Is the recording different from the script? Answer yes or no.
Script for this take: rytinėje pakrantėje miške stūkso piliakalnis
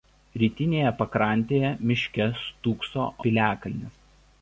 no